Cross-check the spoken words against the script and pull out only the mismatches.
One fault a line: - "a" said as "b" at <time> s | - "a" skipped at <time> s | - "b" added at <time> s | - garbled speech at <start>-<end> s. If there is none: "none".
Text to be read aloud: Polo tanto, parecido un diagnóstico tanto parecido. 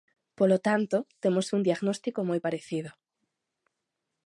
- "parecido" said as "temos" at 1.2 s
- "tanto" said as "moi" at 2.3 s